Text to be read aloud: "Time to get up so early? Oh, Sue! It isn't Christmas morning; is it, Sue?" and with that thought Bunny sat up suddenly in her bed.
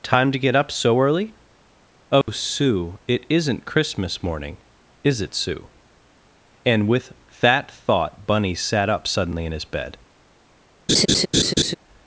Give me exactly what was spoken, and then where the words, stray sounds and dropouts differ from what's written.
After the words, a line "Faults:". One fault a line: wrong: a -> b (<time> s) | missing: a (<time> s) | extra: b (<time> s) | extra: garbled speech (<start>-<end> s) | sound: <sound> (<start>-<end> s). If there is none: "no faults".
"Time to get up so early? Oh, Sue! It isn't Christmas morning; is it, Sue?" and with that thought Bunny sat up suddenly in his bed.
Faults:
sound: dropout (2.2-2.3 s)
wrong: her -> his (9.5 s)
sound: laugh (10.9-11.7 s)